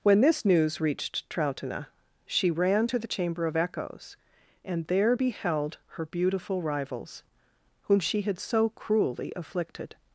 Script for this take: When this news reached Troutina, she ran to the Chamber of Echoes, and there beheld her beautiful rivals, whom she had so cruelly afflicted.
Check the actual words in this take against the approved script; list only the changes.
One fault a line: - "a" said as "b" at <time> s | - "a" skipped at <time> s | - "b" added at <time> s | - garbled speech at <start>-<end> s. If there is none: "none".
none